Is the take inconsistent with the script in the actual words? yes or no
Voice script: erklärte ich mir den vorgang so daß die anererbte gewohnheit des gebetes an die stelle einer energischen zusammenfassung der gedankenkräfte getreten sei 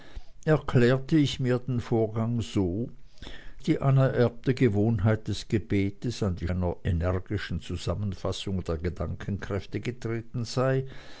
yes